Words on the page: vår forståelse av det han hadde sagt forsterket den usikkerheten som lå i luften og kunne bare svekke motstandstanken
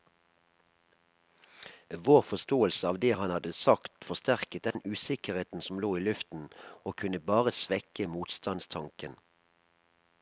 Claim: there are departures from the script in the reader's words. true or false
false